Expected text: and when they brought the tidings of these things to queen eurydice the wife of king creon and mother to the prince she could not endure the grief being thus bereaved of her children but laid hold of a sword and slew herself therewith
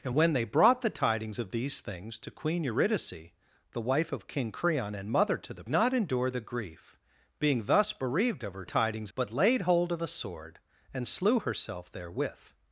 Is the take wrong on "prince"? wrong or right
wrong